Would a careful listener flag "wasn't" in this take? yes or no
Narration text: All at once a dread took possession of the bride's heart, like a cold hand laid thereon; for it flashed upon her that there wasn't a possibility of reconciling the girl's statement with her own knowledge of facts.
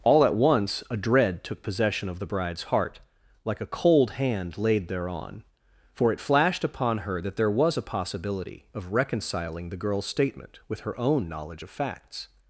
yes